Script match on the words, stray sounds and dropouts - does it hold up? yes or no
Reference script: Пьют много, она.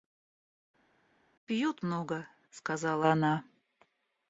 no